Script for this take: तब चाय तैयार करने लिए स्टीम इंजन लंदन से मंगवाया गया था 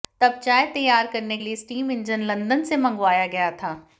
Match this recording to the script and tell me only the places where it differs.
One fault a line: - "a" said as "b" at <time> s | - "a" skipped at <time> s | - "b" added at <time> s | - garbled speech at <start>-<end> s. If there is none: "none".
none